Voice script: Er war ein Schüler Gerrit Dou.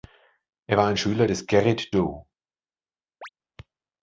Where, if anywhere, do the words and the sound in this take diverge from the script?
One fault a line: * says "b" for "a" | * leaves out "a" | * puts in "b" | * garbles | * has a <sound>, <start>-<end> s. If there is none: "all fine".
* puts in "des"
* has a chirp, 3.2-3.3 s